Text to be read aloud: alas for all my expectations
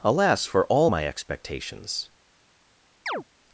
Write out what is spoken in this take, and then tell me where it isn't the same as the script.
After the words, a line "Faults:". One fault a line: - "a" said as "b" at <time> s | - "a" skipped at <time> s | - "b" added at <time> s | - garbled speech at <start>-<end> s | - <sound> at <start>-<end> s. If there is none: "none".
alas for all my expectations
Faults:
- chirp at 3.1-3.2 s